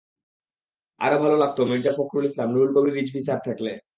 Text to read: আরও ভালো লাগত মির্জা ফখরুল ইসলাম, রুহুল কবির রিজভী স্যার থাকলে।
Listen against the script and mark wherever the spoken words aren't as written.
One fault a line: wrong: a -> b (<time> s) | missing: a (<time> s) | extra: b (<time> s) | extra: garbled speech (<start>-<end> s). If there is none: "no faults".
no faults